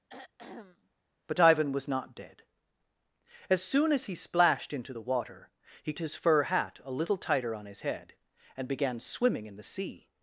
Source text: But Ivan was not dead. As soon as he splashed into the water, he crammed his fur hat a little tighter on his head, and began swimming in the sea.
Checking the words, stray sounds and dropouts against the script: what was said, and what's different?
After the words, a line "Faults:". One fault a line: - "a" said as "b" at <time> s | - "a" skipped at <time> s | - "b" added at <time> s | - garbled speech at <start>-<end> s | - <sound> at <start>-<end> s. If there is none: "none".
But Ivan was not dead. As soon as he splashed into the water, he his fur hat a little tighter on his head, and began swimming in the sea.
Faults:
- throat clearing at 0.1-0.9 s
- "crammed" skipped at 5.9 s